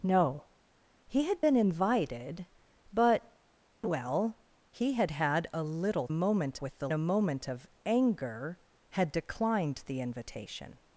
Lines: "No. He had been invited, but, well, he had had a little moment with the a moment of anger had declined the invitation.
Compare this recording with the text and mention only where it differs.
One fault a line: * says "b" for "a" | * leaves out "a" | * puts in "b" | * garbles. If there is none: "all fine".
all fine